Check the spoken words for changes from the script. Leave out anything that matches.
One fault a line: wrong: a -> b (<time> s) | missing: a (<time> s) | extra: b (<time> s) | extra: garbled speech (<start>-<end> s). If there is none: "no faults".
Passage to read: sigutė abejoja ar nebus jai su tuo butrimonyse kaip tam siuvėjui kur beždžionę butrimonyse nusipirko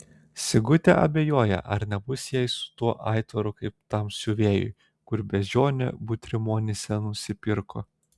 wrong: butrimonyse -> aitvaru (3.1 s)